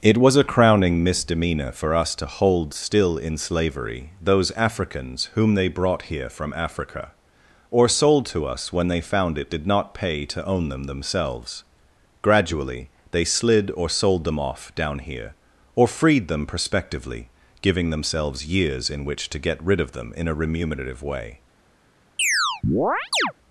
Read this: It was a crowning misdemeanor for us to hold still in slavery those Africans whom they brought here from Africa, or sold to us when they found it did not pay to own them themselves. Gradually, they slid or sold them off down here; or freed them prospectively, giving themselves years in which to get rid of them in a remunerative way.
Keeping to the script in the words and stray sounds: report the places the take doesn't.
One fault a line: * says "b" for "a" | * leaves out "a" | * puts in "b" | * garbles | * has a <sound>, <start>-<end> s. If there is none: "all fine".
* has a chirp, 22.2-23.3 s